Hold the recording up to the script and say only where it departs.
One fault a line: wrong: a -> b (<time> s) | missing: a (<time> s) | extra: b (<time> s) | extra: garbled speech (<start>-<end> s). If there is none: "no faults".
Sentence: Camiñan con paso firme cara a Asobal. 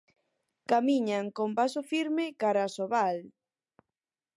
no faults